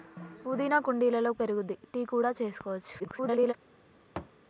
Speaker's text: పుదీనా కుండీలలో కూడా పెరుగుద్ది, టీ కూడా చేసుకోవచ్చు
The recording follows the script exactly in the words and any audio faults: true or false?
false